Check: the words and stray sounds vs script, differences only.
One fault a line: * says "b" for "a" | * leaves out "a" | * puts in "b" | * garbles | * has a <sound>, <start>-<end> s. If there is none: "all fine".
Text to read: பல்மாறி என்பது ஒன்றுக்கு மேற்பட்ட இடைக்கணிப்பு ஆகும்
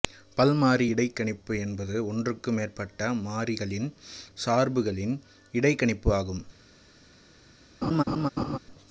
* puts in "இடைக்கணிப்பு"
* puts in "மாறிகளின் சார்புகளின்"
* has a laugh, 7.8-8.6 s